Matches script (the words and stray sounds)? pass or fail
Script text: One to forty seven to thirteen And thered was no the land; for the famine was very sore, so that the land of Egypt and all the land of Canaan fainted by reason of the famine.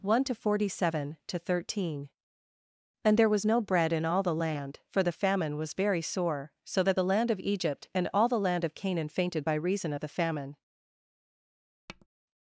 fail